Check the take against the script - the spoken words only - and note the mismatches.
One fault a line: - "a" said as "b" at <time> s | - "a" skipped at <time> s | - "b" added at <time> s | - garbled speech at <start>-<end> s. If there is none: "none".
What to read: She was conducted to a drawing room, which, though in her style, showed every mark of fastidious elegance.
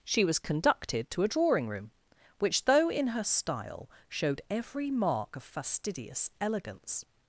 none